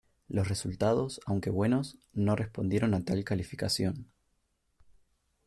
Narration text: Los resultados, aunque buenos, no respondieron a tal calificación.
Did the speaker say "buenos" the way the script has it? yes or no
yes